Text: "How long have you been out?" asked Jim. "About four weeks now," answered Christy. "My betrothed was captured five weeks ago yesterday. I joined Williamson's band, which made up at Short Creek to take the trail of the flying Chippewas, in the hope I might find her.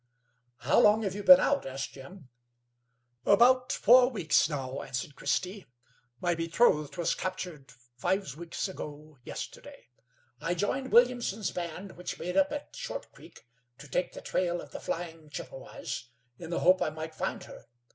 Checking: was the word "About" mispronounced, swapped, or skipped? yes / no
no